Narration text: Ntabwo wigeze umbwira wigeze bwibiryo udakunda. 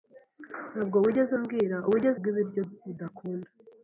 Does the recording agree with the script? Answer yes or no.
yes